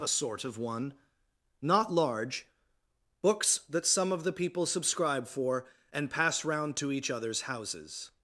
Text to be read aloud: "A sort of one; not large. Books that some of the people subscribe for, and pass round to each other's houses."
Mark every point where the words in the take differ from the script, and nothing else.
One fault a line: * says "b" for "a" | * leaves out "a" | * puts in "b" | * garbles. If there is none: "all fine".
all fine